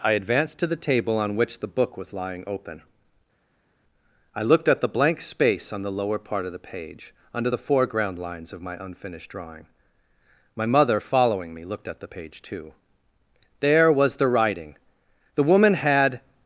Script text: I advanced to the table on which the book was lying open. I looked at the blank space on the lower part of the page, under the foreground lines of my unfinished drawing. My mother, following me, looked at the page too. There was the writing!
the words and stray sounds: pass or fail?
fail